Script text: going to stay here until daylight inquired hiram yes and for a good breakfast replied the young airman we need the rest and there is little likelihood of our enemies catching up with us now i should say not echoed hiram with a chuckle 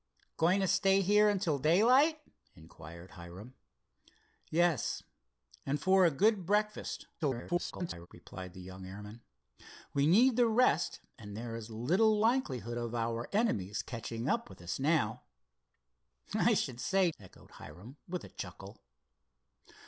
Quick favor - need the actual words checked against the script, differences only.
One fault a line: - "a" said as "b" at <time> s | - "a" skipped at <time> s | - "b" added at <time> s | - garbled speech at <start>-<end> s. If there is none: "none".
- garbled speech at 7.2-8.1 s
- "not" skipped at 17.1 s